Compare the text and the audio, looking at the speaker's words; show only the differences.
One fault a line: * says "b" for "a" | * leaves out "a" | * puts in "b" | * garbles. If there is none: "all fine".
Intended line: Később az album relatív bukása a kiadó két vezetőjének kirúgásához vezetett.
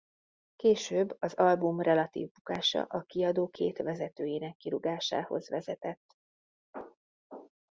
all fine